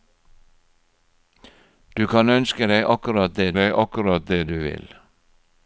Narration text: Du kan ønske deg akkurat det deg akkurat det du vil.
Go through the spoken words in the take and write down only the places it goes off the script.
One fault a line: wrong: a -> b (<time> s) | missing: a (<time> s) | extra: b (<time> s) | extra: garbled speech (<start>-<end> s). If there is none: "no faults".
no faults